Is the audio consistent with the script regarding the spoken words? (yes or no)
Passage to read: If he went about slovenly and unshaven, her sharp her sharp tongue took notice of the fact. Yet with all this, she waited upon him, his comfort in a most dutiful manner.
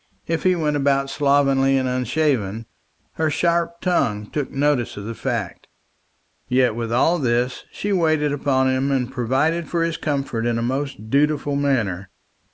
no